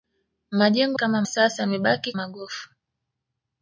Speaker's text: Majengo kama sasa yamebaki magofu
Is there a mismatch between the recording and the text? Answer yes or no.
no